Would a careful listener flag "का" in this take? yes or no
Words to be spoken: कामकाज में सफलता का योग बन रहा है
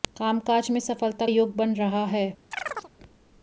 yes